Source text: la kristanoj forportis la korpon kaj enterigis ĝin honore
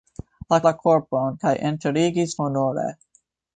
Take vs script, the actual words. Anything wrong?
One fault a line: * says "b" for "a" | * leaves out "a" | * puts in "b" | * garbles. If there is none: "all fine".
* leaves out "kristanoj forportis"
* leaves out "ĝin"